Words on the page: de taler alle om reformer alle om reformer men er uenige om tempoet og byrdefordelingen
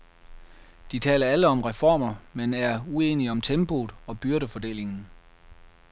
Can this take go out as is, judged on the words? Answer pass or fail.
fail